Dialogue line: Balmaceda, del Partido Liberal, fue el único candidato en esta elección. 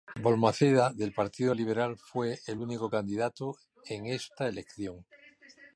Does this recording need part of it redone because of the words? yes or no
no